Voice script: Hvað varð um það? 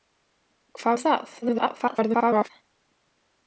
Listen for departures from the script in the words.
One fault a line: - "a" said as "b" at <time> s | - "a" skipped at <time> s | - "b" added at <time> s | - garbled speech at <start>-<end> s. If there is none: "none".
- "varð" skipped at 1.0 s
- garbled speech at 1.4-2.5 s